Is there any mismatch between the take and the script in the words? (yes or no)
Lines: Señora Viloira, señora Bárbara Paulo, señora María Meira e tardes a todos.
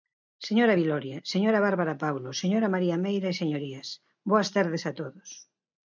yes